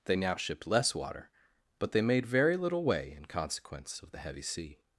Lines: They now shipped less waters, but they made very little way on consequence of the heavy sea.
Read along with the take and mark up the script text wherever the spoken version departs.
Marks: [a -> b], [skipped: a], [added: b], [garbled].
They now shipped less [waters, -> water] but they made very little way [on -> in] consequence of the heavy sea.